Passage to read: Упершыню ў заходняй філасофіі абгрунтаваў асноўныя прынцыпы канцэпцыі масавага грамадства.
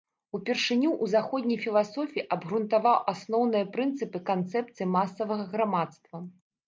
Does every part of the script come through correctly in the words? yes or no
yes